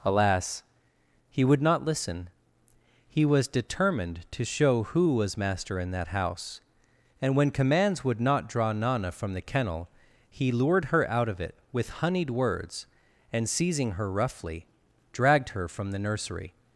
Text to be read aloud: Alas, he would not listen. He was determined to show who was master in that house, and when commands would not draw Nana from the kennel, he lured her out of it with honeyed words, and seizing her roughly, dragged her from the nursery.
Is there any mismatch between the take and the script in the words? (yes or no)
no